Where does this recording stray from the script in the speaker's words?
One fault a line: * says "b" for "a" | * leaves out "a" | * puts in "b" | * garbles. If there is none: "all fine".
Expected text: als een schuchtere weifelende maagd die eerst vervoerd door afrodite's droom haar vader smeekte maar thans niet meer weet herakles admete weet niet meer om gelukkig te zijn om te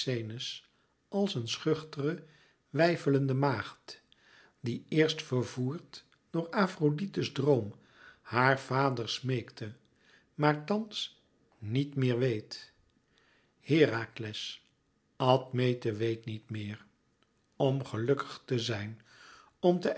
all fine